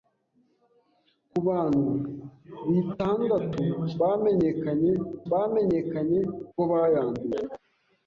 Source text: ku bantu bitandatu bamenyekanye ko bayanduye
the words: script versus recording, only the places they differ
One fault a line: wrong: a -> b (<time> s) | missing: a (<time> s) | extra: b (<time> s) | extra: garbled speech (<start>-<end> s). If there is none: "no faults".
extra: bamenyekanye (5.3 s)